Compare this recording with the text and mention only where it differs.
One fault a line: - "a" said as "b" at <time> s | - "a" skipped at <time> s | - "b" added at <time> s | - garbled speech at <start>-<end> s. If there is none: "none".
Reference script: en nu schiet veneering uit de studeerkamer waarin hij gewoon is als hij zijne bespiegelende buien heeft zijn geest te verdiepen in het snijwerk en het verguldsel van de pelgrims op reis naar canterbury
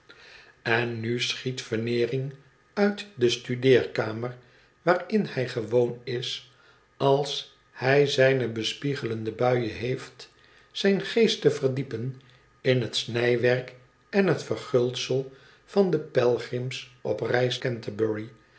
- "naar" skipped at 17.6 s